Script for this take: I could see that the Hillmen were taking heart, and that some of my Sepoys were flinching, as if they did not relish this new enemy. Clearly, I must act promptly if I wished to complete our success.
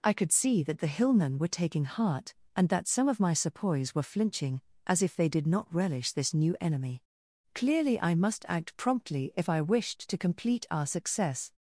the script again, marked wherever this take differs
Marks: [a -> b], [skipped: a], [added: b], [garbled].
I could see that the Hillmen were taking heart, and that some of my Sepoys were flinching, as if they did not relish this new enemy. Clearly, I must act promptly if I wished to complete our success.